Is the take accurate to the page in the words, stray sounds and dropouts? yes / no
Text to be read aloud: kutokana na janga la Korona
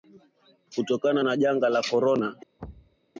no